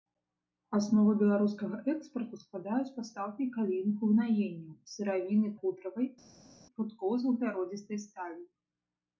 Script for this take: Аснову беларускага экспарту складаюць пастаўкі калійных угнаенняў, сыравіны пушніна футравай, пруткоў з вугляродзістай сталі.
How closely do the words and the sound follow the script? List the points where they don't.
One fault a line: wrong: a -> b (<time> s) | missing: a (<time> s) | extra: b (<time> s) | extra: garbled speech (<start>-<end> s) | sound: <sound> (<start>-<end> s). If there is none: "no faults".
missing: пушніна (5.5 s)